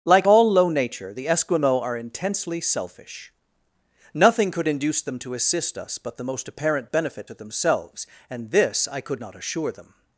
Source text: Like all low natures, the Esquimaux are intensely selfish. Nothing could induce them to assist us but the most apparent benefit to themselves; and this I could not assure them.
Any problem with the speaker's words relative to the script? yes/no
yes